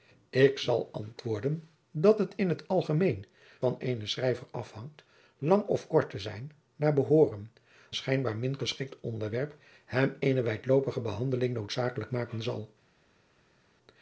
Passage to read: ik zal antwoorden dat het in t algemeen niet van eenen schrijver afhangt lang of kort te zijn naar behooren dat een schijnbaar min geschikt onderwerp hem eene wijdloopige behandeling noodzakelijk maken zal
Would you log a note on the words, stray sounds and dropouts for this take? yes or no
yes